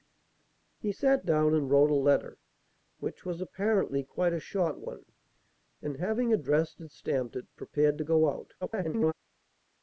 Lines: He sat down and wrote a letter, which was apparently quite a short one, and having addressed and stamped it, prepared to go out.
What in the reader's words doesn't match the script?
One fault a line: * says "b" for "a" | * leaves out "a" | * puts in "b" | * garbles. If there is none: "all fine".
* garbles